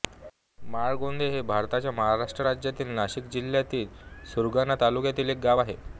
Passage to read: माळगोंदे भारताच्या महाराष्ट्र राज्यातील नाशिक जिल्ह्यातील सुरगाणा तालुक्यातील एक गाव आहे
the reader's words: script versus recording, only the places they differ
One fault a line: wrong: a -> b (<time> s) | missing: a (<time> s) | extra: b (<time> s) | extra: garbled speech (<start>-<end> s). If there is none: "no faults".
extra: हे (1.3 s)